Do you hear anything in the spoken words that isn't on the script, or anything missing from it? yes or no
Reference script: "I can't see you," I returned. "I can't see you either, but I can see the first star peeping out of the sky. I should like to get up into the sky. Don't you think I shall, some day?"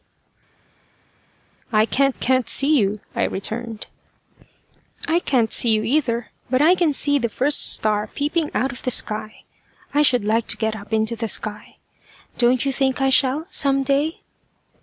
yes